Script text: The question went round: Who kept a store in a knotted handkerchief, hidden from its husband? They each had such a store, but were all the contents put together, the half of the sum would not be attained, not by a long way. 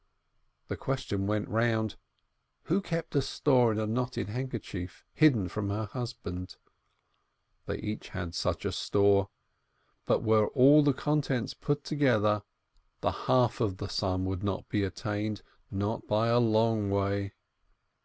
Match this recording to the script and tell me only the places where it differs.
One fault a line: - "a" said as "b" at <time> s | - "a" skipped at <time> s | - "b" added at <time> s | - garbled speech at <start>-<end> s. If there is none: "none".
- "its" said as "her" at 5.7 s